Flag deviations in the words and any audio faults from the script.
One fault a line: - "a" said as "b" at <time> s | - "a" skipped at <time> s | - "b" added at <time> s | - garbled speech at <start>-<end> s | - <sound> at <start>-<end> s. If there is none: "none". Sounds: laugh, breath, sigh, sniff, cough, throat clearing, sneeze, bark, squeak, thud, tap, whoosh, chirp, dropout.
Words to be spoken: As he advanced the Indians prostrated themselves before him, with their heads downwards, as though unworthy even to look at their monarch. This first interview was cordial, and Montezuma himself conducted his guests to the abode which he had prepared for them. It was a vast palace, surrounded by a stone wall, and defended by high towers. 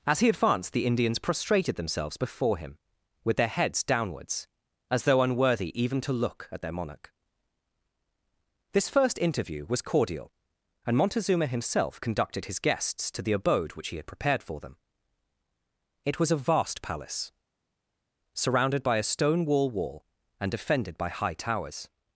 - "wall" added at 19.7 s